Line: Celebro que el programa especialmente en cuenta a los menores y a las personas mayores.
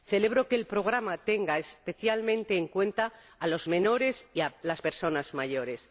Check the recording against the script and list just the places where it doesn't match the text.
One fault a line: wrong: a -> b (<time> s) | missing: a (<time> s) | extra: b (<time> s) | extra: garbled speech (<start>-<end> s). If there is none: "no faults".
extra: tenga (1.2 s)